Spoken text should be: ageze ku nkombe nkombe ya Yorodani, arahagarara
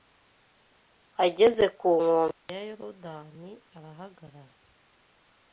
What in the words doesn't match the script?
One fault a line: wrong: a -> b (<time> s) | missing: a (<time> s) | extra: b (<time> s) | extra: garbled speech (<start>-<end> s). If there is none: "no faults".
missing: nkombe (2.5 s)